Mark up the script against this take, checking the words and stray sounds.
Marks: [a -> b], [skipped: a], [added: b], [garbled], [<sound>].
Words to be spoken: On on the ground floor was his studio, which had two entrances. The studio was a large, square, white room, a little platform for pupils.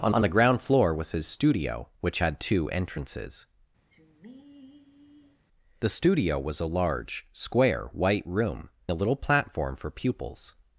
On on the ground floor was his studio, which had two entrances. [sigh] The studio was a large, square, white room, a little platform for pupils.